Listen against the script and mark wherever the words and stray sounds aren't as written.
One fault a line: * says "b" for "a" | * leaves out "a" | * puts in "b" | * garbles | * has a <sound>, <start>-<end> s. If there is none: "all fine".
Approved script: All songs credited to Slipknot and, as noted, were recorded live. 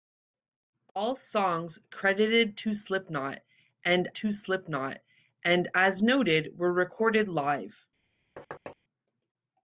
* puts in "to Slipknot and"
* has a thud, 8.4-8.8 s